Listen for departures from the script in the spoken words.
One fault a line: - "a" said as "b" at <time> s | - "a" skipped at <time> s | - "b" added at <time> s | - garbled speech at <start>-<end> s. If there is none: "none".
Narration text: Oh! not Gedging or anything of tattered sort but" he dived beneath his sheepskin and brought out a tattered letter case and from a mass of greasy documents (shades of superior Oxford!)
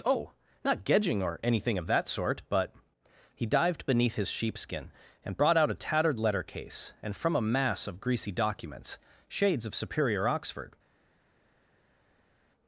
- "tattered" said as "that" at 1.9 s